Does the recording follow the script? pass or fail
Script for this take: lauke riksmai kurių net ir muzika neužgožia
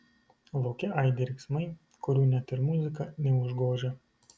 fail